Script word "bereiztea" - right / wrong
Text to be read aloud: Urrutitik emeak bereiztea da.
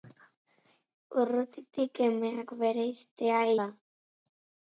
right